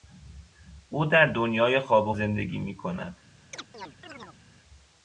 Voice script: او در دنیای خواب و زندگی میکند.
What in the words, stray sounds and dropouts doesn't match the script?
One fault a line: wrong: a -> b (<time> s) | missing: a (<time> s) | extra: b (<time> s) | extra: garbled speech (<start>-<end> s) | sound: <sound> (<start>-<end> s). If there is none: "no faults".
sound: chirp (3.5-4.4 s)